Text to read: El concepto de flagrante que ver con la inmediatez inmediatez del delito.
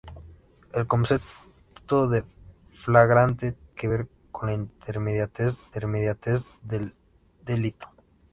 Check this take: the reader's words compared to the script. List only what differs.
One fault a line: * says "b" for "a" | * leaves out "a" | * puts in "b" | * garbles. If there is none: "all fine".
all fine